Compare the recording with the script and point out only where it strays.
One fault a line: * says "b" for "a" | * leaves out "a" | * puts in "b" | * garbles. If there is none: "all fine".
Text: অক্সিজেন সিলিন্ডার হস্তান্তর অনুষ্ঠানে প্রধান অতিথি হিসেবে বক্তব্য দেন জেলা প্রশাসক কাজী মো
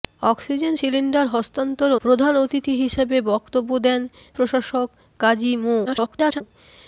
* leaves out "অনুষ্ঠানে"
* leaves out "জেলা"
* garbles